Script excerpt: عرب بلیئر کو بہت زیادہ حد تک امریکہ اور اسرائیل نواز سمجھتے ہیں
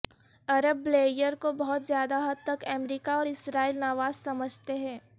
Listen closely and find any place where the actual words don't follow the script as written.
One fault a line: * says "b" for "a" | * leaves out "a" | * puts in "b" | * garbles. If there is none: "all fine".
all fine